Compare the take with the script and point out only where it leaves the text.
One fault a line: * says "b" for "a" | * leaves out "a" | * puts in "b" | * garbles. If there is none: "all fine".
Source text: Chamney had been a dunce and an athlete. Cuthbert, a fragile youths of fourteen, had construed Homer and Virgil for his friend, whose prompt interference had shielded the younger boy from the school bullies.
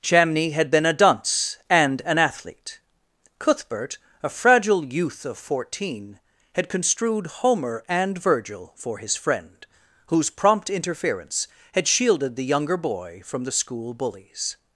* says "youth" for "youths"